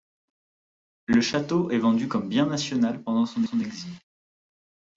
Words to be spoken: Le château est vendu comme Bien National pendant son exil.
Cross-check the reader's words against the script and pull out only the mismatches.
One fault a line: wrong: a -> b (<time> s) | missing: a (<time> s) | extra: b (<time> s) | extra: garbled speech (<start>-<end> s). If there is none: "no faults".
extra: son (3.4 s)